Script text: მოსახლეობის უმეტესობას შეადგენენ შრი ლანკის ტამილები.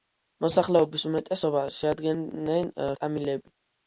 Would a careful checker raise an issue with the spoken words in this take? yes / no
yes